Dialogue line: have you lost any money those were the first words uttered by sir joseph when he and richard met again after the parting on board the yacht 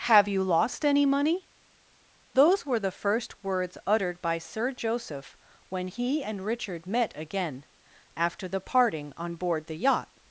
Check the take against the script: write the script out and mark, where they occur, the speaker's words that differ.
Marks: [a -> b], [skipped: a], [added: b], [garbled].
have you lost any money those were the first words uttered by sir joseph when he and richard met again after the parting on board the yacht